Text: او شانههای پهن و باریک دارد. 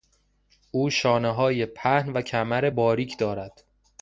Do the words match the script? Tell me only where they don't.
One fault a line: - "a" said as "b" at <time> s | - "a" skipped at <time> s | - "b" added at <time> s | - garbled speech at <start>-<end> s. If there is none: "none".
- "کمر" added at 2.2 s